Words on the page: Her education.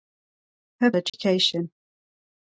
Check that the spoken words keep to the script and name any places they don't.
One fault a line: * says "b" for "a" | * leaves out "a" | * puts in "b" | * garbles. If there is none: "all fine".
all fine